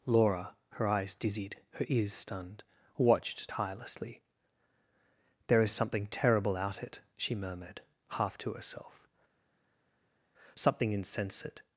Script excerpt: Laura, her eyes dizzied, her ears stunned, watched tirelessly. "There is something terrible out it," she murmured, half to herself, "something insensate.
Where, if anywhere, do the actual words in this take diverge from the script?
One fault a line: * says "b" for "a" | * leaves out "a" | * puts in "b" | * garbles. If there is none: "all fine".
all fine